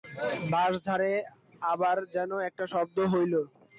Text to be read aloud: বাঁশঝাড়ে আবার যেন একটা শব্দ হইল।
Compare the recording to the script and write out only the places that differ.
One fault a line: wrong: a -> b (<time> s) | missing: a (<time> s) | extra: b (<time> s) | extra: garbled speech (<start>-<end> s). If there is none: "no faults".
no faults